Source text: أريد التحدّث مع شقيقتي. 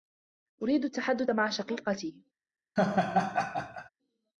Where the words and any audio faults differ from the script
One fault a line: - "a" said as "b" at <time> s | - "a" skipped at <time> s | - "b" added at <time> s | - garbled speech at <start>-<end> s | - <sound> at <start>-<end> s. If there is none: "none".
- laugh at 2.8-3.9 s